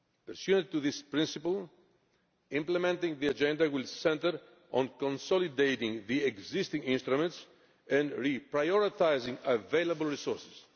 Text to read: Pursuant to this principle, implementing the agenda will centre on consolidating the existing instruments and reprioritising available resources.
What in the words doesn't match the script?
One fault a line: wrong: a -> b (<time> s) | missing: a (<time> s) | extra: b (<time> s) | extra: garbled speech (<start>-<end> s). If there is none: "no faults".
no faults